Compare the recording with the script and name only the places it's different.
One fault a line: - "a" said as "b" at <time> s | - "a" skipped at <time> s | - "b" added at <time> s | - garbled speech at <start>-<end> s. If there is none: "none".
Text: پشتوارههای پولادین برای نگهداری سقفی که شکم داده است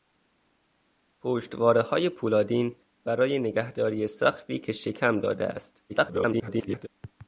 - garbled speech at 5.9-6.9 s